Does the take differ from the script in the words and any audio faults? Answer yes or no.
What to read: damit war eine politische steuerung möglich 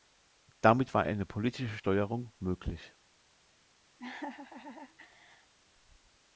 yes